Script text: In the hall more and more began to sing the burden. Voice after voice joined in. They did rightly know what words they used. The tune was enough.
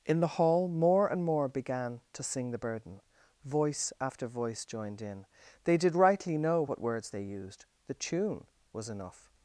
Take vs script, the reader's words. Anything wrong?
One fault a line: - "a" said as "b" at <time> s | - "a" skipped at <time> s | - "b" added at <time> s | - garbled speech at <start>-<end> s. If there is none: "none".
none